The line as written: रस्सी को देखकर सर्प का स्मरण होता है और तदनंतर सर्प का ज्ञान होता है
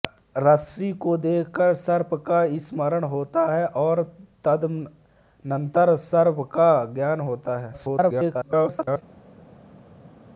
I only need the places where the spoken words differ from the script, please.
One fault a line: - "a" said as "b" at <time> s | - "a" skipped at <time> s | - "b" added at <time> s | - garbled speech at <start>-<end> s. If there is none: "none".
- garbled speech at 7.7-9.0 s